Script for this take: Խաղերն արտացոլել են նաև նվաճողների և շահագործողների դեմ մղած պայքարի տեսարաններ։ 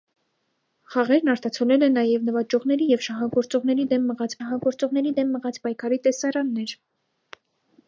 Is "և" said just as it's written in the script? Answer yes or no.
yes